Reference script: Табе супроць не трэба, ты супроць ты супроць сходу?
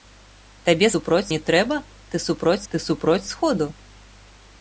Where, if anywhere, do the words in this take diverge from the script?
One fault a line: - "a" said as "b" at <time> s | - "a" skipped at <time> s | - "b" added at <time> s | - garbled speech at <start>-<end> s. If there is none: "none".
none